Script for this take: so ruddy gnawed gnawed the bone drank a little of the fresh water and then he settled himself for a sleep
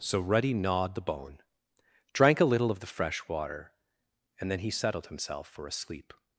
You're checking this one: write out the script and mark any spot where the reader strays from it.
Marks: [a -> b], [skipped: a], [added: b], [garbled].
so ruddy gnawed [skipped: gnawed] the bone drank a little of the fresh water and then he settled himself for a sleep